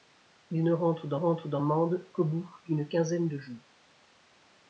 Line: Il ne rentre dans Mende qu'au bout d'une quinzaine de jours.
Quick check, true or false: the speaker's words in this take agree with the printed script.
false